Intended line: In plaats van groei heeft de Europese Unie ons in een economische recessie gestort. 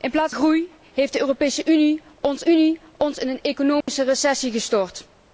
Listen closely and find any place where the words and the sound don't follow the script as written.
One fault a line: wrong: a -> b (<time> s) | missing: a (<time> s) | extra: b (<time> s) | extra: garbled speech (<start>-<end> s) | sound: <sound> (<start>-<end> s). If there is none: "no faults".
missing: van (0.3 s)
extra: Unie ons (2.4 s)
sound: dropout (3.8-3.9 s)